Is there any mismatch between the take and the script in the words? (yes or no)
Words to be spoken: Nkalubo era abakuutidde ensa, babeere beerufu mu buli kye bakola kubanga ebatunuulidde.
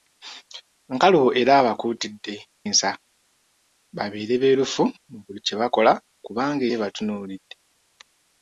no